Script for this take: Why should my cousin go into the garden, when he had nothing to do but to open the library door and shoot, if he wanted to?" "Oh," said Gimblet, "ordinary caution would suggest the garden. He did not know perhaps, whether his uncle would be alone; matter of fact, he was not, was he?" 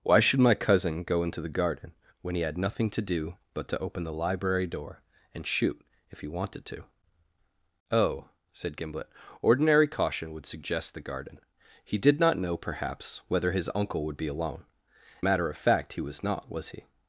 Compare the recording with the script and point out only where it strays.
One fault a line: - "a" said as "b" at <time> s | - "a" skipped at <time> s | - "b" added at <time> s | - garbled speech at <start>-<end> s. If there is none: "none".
none